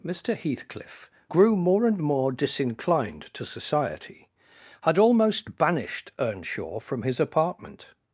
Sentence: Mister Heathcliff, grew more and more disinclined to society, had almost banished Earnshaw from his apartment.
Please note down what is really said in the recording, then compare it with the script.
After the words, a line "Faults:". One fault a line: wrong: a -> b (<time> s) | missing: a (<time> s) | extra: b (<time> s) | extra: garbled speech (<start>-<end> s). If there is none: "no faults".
Mister Heathcliff, grew more and more disinclined to society, had almost banished Earnshaw from his apartment.
Faults:
no faults